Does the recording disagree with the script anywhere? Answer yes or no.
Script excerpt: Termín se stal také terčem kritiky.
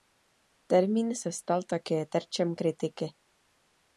no